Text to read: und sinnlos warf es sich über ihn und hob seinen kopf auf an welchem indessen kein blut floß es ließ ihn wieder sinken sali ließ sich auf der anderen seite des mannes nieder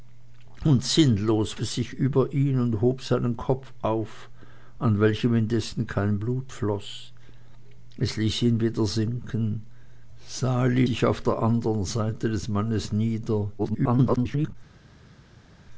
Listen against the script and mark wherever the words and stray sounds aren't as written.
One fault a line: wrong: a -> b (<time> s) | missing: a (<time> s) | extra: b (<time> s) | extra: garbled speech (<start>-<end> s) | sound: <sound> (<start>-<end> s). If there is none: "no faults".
missing: warf (1.6 s)
missing: ließ (10.8 s)
extra: garbled speech (13.6-14.6 s)